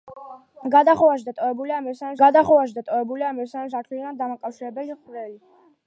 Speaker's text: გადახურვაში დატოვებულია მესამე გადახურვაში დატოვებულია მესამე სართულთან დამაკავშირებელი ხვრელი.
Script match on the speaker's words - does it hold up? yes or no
yes